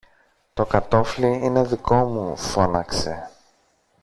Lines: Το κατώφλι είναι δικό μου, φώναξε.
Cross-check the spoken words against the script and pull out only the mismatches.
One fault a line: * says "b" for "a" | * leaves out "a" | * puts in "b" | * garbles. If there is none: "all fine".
all fine